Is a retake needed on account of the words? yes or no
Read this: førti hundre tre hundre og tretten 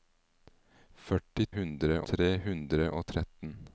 no